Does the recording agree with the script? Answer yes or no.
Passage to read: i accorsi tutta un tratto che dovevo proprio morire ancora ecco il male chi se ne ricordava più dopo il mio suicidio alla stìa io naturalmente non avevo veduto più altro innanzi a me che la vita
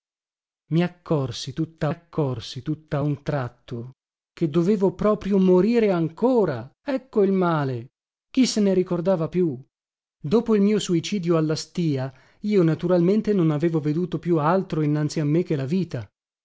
no